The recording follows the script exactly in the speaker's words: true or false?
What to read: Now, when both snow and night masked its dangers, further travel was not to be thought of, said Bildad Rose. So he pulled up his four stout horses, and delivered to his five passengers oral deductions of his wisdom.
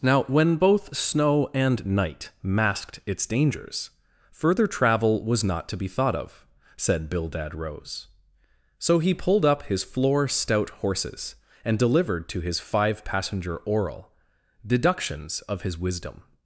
false